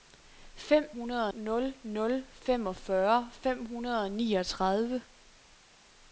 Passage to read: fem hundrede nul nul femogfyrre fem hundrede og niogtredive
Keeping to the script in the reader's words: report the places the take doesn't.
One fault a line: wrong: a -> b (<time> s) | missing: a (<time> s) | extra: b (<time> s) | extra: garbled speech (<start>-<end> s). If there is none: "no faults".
no faults